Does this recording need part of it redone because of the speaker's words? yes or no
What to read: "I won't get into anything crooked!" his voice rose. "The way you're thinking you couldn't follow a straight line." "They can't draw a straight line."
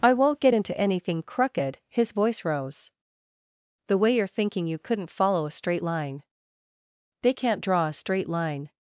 no